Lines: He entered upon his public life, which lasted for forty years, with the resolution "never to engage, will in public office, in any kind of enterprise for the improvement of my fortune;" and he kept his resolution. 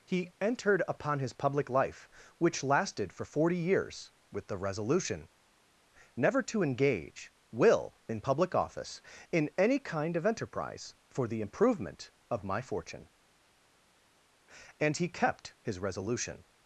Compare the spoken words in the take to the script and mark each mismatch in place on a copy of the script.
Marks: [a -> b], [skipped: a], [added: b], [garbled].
He entered upon his public life, which lasted for forty years, with the resolution "never to engage, will in public office, in any kind of enterprise for the improvement of my fortune;" and he kept his resolution.